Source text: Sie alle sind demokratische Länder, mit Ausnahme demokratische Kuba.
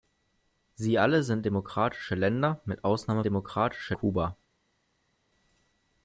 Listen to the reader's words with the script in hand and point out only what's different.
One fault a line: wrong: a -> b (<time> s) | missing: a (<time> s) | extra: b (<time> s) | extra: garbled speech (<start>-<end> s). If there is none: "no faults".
no faults